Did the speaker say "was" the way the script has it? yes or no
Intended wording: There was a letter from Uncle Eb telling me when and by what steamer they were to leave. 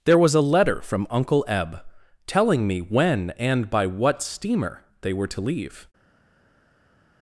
yes